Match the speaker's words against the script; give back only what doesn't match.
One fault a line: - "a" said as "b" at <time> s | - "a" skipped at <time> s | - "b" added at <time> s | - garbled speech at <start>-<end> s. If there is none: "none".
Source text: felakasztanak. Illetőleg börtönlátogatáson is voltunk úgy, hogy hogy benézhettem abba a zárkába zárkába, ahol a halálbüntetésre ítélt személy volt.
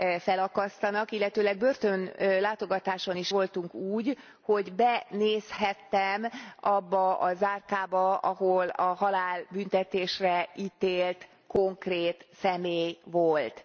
- "hogy" skipped at 4.7 s
- "zárkába" skipped at 8.2 s
- "konkrét" added at 11.5 s